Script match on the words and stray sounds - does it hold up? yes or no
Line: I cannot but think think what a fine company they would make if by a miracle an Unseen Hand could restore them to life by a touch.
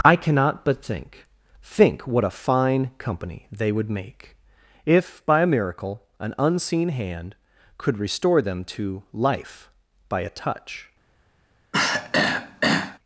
no